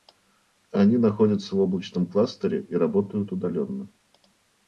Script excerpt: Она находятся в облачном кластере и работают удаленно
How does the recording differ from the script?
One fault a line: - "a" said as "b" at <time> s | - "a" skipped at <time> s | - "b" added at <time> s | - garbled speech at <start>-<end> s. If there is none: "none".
- "Она" said as "Они" at 0.7 s